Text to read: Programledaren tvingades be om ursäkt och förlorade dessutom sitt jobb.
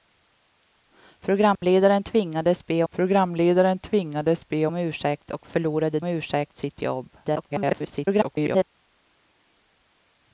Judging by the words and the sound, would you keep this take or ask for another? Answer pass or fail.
fail